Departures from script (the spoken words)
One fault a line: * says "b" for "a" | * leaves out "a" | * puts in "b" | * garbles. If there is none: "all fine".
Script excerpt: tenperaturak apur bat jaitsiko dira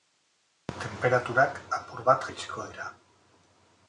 all fine